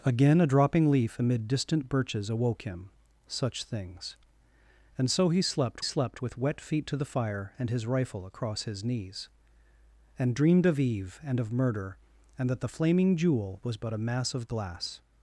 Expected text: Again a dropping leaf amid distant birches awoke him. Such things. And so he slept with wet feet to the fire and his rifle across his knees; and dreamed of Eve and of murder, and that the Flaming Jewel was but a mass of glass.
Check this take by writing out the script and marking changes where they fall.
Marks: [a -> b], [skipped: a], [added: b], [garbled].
Again a dropping leaf amid distant birches awoke him. Such things. And so he slept [added: slept] with wet feet to the fire and his rifle across his knees; and dreamed of Eve and of murder, and that the Flaming Jewel was but a mass of glass.